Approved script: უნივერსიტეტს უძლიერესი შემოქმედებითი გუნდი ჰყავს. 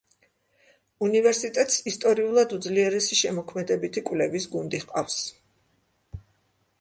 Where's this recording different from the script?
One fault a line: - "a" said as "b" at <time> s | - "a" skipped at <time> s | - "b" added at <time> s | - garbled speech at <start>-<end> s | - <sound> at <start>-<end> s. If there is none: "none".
- "ისტორიულად" added at 1.9 s
- "კვლევის" added at 4.1 s